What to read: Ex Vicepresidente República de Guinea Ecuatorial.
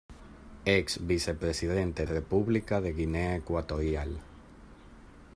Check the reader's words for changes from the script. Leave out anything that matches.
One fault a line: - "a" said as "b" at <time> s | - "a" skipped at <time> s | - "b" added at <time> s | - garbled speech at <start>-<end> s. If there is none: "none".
none